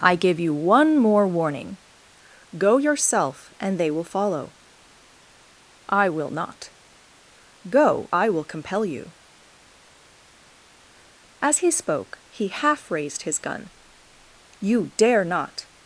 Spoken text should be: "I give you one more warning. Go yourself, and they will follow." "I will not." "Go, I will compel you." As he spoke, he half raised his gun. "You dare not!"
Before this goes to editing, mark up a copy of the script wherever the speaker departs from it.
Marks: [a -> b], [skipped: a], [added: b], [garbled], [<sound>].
"I give you one more warning. Go yourself, and they will follow." "I will not." "Go, I will compel you." As he spoke, he half raised his gun. "You dare not!"